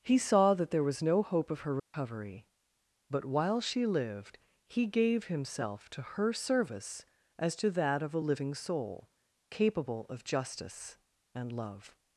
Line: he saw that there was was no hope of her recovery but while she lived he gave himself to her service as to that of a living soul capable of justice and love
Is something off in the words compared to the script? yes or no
yes